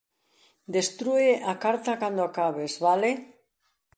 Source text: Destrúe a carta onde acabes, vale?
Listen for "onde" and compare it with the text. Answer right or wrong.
wrong